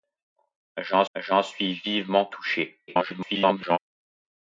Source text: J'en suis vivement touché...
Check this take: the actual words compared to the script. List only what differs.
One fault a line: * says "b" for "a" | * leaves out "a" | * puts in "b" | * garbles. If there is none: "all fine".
* puts in "j'en"
* garbles